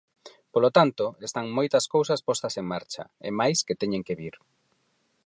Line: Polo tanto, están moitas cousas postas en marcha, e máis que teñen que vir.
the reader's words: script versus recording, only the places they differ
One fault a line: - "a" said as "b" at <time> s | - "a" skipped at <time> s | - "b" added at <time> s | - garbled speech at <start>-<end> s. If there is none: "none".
none